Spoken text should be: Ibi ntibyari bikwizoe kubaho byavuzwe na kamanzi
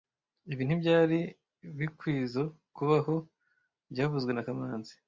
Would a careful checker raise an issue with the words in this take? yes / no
no